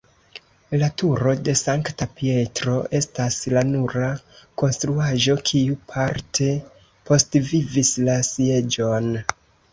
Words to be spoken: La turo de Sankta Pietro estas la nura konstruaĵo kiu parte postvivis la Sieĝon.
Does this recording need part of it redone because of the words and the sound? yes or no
no